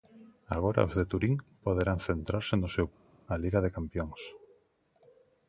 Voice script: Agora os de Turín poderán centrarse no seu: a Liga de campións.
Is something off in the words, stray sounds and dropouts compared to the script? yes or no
no